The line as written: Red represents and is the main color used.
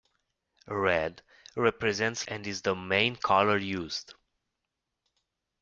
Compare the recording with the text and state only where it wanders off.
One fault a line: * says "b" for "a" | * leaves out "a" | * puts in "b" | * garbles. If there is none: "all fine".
all fine